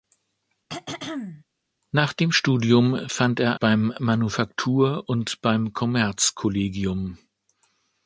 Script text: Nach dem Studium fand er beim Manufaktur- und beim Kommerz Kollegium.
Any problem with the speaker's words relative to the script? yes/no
no